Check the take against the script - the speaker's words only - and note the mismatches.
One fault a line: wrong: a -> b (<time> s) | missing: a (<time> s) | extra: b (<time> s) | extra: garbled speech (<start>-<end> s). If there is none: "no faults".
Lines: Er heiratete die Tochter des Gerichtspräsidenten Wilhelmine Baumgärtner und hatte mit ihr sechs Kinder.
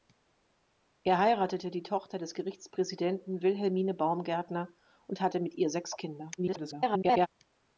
extra: garbled speech (6.4-7.3 s)